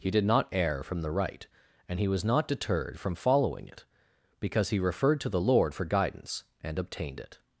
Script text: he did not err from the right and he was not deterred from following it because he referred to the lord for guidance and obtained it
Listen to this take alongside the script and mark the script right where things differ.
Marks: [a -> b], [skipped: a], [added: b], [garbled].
he did not err from the right and he was not deterred from following it because he referred to the lord for guidance and obtained it